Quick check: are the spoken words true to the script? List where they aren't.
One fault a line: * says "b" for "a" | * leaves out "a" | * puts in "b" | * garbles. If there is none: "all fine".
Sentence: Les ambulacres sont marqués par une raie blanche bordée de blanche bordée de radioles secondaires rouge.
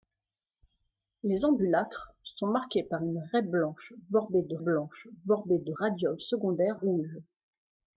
all fine